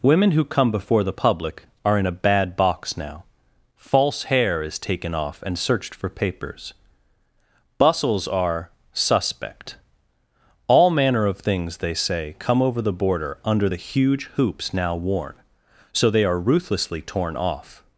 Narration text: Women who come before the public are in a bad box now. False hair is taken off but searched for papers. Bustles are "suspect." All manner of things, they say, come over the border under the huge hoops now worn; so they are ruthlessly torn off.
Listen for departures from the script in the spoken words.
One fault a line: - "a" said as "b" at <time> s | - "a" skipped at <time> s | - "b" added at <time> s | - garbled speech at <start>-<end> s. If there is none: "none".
- "but" said as "and" at 5.4 s